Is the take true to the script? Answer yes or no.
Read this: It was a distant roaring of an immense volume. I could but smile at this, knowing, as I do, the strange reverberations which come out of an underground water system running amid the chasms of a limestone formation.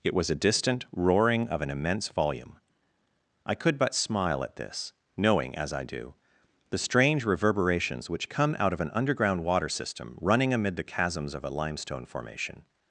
yes